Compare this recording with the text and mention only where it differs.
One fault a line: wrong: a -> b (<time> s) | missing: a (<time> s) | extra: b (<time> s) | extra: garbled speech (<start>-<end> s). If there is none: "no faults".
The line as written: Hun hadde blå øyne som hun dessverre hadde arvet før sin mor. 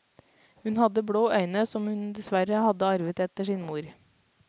wrong: før -> etter (3.3 s)